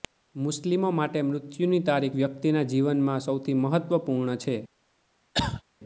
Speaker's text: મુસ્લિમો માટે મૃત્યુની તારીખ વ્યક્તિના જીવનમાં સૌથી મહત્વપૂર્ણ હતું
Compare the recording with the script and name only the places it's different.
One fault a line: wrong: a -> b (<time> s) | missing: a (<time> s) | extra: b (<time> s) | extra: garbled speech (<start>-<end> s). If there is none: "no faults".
wrong: હતું -> છે (4.4 s)